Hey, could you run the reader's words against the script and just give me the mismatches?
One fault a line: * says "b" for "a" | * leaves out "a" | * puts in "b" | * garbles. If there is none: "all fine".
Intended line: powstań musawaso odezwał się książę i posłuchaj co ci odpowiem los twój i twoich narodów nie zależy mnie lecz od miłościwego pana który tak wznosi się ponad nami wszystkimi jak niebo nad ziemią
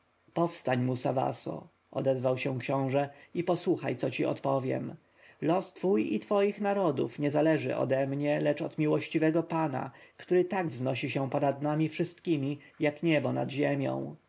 * puts in "ode"